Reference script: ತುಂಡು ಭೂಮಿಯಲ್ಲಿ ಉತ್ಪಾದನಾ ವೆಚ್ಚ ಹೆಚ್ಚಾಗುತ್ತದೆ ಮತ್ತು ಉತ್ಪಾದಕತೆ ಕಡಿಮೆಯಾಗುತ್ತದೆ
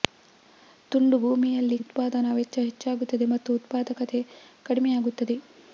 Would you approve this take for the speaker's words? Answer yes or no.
yes